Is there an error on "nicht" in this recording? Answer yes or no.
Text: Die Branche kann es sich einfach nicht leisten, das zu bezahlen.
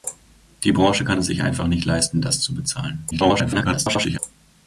no